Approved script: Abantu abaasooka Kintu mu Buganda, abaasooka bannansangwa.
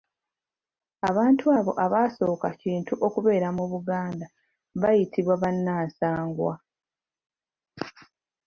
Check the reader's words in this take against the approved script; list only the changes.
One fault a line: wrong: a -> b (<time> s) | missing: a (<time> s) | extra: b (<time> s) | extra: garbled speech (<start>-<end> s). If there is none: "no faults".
extra: abo (1.6 s)
extra: okubeera (3.1 s)
wrong: abaasooka -> bayitibwa (4.8 s)